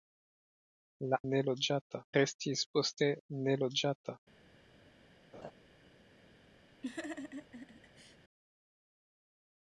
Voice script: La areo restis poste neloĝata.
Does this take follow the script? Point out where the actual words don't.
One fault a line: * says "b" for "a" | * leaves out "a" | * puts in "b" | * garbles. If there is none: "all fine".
* says "neloĝata" for "areo"